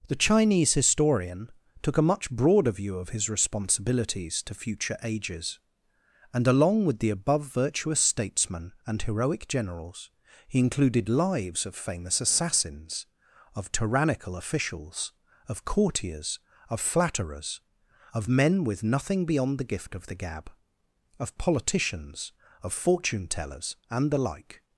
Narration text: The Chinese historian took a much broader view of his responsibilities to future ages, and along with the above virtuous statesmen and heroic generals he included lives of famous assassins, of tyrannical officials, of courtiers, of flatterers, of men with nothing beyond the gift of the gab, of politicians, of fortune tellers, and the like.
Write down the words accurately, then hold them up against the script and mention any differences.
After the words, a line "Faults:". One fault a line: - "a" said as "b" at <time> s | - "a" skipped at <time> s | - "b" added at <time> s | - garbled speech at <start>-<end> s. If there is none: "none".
The Chinese historian took a much broader view of his responsibilities to future ages, and along with the above virtuous statesmen and heroic generals he included lives of famous assassins, of tyrannical officials, of courtiers, of flatterers, of men with nothing beyond the gift of the gab, of politicians, of fortune tellers, and the like.
Faults:
none